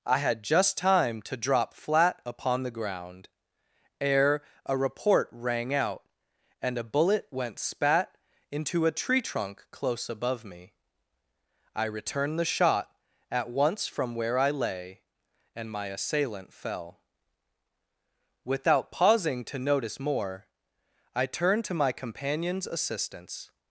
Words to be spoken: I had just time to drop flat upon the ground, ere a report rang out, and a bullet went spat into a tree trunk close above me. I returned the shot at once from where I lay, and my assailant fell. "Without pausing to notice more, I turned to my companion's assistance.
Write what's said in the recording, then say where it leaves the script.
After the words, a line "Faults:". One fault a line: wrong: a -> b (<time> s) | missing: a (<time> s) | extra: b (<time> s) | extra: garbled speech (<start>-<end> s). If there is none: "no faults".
I had just time to drop flat upon the ground, ere a report rang out, and a bullet went spat into a tree trunk close above me. I returned the shot at once from where I lay, and my assailant fell. "Without pausing to notice more, I turned to my companion's assistance.
Faults:
no faults